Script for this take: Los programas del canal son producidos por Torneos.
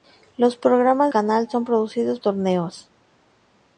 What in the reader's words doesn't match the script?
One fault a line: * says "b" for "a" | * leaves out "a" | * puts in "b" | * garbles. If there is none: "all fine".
* leaves out "del"
* leaves out "por"